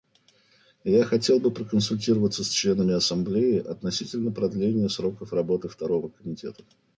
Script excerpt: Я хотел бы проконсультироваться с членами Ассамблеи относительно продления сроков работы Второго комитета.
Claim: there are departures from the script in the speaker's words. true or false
false